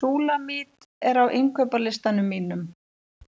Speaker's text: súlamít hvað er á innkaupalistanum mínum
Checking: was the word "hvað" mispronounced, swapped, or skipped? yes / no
yes